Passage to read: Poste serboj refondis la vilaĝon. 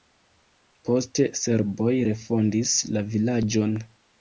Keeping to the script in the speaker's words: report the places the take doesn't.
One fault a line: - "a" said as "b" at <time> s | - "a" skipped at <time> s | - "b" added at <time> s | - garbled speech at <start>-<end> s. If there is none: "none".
none